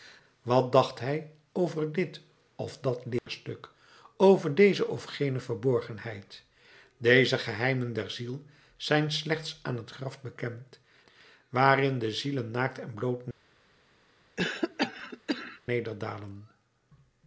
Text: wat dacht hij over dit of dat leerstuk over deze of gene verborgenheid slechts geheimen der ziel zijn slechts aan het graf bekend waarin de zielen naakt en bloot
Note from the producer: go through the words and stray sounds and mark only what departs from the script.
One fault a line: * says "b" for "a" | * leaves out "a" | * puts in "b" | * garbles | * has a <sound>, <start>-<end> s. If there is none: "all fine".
* has a dropout, 3.2-3.3 s
* says "deze" for "slechts"
* has a cough, 14.4-15.6 s